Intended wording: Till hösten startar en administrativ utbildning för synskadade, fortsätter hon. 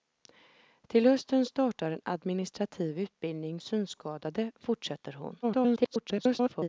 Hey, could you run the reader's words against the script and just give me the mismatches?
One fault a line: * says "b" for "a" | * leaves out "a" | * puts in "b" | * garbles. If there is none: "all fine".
* leaves out "för"
* garbles